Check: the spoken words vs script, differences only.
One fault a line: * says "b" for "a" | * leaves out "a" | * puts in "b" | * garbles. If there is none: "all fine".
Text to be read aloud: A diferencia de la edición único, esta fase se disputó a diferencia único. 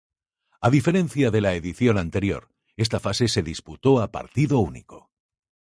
* says "anterior" for "único"
* says "partido" for "diferencia"